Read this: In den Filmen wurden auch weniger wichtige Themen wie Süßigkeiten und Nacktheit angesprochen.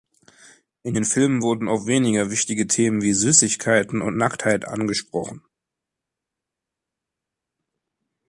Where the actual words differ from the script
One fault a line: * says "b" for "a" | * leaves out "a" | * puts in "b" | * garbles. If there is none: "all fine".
all fine